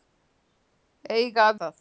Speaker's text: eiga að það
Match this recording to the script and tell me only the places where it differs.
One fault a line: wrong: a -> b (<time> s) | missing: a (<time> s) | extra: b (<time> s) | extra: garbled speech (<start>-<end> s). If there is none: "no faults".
no faults